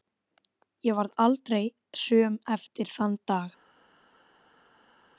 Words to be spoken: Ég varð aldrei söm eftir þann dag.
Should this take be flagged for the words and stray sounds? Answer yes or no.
no